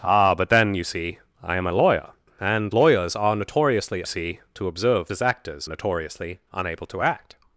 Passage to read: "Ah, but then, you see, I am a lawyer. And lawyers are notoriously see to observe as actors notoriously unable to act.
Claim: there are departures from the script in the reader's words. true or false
false